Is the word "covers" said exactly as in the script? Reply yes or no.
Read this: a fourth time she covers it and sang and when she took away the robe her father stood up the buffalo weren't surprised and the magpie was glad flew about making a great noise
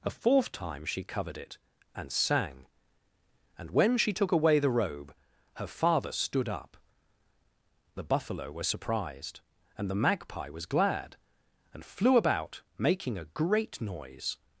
no